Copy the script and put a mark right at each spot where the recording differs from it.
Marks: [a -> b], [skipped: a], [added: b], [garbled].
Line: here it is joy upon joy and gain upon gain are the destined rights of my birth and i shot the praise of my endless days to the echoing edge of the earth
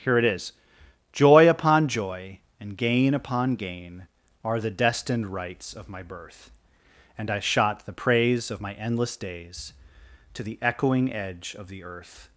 here it is joy upon joy and gain upon gain are the destined rights of my birth and i shot the praise of my endless days to the echoing edge of the earth